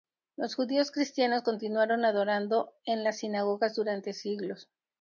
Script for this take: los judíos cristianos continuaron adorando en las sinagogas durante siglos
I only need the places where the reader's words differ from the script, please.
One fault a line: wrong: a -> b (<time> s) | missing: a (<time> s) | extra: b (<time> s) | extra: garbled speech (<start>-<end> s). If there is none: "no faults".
no faults